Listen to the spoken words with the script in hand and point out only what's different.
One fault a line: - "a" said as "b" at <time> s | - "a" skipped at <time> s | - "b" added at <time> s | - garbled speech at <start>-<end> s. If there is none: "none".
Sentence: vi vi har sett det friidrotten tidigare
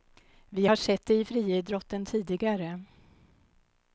- "vi" skipped at 0.7 s
- "i" added at 1.1 s